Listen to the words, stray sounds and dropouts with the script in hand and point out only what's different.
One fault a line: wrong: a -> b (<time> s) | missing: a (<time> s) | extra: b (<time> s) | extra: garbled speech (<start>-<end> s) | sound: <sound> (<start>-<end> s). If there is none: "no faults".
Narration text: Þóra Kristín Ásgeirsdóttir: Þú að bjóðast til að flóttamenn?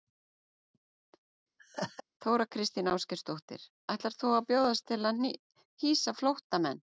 sound: laugh (1.6-2.0 s)
extra: Ætlar (4.0 s)
extra: hýsa (5.9 s)